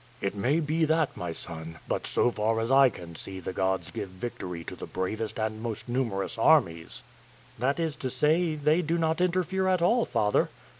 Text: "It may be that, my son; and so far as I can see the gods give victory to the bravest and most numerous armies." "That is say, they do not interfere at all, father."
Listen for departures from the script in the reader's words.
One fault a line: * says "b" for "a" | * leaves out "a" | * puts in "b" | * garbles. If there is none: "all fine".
* says "but" for "and"
* puts in "to"